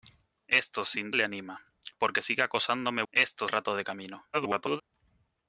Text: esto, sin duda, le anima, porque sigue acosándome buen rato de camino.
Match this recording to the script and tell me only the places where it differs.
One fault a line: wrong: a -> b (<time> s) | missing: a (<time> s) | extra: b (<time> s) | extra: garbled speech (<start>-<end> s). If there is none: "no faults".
missing: duda (1.1 s)
wrong: buen -> esto (3.1 s)
extra: garbled speech (4.3-4.8 s)